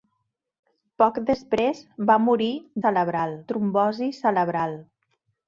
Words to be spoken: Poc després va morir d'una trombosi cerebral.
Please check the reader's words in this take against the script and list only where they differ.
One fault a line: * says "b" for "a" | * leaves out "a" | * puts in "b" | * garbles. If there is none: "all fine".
* says "cerebral" for "d'una"